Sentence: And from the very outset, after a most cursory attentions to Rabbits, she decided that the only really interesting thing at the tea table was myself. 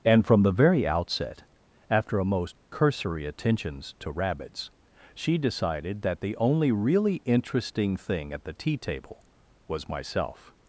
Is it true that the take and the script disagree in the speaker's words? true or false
false